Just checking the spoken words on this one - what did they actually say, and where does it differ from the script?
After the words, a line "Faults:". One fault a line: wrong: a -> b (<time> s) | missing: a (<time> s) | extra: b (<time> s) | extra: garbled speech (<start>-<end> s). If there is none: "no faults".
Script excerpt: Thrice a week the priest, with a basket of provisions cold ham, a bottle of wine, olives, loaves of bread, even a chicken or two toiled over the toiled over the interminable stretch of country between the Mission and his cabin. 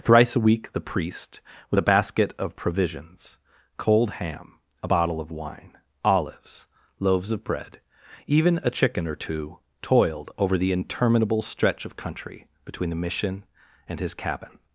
Thrice a week the priest, with a basket of provisions cold ham, a bottle of wine, olives, loaves of bread, even a chicken or two toiled over the interminable stretch of country between the Mission and his cabin.
Faults:
missing: toiled over the (10.7 s)